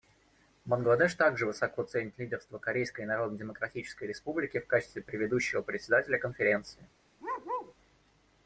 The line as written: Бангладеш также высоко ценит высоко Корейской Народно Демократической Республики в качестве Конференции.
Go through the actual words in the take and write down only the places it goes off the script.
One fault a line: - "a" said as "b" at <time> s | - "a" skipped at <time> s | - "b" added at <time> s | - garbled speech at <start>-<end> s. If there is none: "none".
- "высоко" said as "лидерство" at 2.2 s
- "предыдущего Председателя" added at 5.0 s